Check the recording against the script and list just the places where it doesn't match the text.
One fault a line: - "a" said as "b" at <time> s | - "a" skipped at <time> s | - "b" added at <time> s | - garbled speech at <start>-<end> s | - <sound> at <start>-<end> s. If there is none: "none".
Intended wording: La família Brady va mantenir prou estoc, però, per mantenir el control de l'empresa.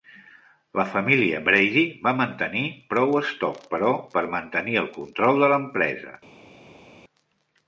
none